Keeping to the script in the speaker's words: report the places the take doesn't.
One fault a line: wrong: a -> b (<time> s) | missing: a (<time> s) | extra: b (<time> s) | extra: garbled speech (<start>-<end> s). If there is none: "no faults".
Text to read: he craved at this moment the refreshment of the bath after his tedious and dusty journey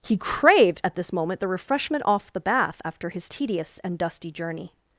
wrong: of -> off (2.0 s)